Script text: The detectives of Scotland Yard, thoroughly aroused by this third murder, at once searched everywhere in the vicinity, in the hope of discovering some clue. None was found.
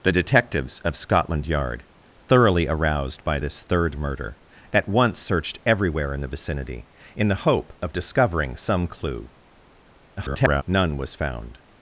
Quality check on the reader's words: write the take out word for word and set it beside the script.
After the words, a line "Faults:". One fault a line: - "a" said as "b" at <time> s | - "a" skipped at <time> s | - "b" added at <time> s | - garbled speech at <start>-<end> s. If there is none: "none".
The detectives of Scotland Yard, thoroughly aroused by this third murder, at once searched everywhere in the vicinity, in the hope of discovering some clue. [garbled] None was found.
Faults:
- garbled speech at 10.2-10.6 s